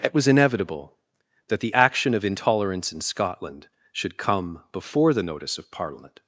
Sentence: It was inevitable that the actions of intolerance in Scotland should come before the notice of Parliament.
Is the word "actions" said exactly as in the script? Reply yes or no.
no